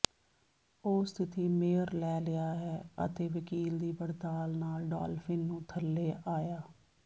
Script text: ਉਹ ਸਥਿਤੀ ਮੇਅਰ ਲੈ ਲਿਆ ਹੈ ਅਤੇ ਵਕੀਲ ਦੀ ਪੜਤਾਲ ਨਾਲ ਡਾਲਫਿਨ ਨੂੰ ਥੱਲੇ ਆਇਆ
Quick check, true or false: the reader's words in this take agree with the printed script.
true